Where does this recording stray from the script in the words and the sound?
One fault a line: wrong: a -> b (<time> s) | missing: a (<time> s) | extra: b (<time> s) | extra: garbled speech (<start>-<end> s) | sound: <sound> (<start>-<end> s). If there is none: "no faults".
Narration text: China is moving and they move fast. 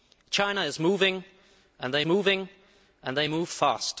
extra: moving and they (2.0 s)